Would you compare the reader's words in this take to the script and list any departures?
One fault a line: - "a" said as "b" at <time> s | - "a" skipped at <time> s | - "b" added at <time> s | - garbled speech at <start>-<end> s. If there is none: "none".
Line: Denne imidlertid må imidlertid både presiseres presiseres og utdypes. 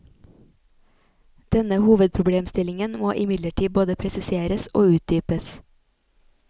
- "imidlertid" said as "hovedproblemstillingen" at 1.8 s
- "presiseres" skipped at 4.7 s